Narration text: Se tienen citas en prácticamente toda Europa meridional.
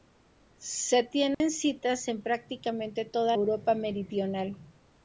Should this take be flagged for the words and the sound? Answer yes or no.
yes